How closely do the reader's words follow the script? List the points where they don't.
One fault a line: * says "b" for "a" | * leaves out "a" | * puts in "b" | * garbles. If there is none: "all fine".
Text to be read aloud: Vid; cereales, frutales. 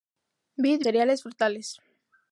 all fine